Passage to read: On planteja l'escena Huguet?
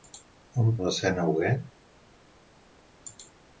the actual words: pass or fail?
fail